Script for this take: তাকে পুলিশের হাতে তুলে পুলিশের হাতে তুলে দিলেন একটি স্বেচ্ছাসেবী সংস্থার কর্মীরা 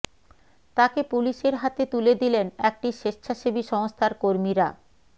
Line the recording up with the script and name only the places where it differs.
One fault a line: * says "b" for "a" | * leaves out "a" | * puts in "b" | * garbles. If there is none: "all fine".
* leaves out "পুলিশের হাতে তুলে"